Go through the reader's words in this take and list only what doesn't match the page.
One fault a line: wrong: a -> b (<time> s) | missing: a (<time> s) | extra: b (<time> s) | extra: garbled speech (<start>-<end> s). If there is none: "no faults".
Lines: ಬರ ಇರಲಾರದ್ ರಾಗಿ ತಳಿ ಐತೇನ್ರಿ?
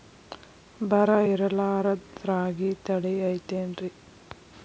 no faults